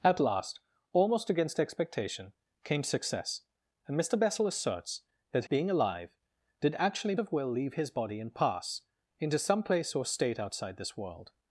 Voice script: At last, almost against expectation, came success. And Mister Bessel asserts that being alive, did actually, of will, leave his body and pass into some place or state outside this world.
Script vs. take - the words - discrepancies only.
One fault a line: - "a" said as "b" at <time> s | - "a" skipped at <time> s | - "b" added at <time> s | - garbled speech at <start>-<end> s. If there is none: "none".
none